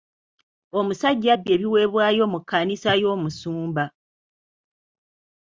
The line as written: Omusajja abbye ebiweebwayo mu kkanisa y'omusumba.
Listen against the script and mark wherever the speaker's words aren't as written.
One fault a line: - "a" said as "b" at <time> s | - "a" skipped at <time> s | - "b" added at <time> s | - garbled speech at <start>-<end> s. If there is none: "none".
none